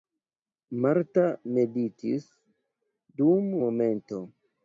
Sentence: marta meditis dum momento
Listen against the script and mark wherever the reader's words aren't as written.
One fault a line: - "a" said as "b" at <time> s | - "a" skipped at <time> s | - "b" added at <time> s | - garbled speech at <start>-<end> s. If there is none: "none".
none